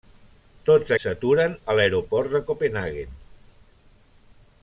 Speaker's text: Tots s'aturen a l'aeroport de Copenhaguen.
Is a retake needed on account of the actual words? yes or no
no